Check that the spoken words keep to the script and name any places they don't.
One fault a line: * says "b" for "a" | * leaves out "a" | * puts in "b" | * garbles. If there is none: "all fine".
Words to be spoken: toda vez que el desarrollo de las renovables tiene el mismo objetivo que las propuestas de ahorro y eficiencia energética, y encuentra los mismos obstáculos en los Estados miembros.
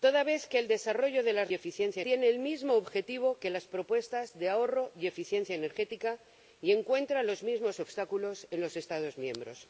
* says "eficiencia" for "renovables"